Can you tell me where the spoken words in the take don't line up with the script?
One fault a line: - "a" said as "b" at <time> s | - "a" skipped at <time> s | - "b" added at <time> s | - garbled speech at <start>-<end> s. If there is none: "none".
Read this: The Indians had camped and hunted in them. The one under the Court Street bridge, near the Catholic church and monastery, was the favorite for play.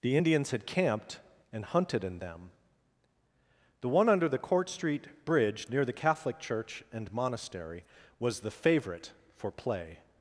none